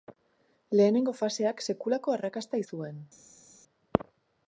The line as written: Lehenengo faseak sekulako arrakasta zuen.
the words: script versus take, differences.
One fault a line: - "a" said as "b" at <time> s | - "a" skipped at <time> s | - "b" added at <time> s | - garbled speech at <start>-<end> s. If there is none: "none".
none